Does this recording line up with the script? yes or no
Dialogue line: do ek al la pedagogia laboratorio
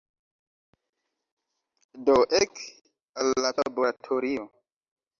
no